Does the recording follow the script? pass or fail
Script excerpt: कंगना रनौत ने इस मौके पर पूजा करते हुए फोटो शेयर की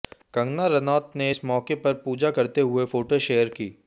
pass